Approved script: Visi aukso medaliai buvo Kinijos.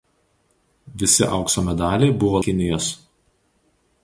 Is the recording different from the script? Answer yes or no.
no